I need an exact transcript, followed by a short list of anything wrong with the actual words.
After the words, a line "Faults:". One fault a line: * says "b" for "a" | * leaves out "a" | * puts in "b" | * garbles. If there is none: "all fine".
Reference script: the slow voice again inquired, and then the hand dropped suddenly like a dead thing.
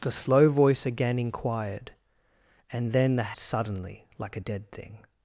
the slow voice again inquired, and then the suddenly like a dead thing.
Faults:
* leaves out "hand dropped"